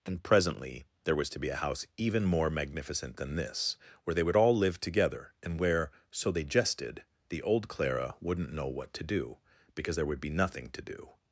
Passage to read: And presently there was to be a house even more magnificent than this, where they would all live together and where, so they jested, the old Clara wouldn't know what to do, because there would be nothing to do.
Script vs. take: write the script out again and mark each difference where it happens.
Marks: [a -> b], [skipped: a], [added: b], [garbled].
And presently there was to be a house even more magnificent than this, where they would all live together and where, so they jested, the old Clara wouldn't know what to do, because there would be nothing to do.